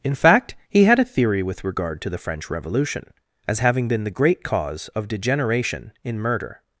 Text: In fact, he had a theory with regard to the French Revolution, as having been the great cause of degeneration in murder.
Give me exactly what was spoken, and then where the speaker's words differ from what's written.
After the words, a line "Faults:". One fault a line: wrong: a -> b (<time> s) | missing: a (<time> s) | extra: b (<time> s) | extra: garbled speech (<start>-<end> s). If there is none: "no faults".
In fact, he had a theory with regard to the French Revolution, as having been the great cause of degeneration in murder.
Faults:
no faults